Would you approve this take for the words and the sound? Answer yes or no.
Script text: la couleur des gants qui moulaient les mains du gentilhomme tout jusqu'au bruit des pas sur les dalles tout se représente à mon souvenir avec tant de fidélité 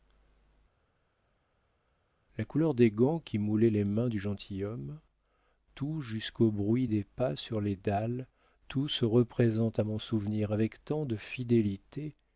yes